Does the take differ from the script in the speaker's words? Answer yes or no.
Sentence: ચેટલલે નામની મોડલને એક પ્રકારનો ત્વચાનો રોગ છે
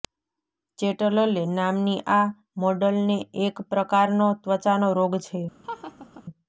yes